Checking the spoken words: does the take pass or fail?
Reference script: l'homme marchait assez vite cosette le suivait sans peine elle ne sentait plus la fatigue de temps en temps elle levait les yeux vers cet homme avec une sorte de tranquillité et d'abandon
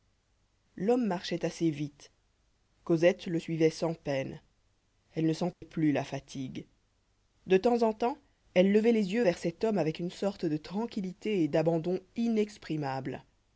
pass